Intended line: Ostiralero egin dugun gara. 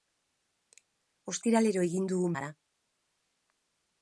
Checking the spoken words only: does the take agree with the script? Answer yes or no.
yes